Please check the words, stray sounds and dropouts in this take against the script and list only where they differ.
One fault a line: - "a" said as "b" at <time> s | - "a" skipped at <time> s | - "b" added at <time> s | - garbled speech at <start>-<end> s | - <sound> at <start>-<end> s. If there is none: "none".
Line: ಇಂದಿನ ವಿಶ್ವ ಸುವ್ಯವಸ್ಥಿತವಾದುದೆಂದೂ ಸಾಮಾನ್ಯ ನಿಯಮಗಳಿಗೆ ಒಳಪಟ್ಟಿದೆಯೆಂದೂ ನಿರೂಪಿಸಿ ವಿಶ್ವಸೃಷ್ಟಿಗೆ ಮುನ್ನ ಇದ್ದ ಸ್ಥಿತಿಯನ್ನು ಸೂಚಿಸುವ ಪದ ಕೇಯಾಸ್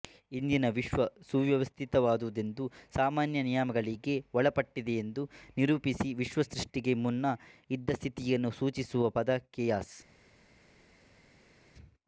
none